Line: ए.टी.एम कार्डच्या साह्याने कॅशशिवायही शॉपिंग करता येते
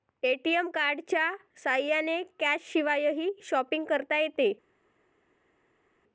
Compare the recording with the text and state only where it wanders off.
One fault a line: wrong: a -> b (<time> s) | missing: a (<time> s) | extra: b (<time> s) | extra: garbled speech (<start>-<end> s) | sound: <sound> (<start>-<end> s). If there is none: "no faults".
no faults